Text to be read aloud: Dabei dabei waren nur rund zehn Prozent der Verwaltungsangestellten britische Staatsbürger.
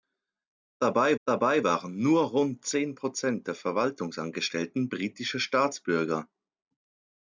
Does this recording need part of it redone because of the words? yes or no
no